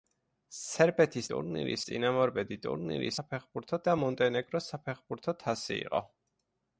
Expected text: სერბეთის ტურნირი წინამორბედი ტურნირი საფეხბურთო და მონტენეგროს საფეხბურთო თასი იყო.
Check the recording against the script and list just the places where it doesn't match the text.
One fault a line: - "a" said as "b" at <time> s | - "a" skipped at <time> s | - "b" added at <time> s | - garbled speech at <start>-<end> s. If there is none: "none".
none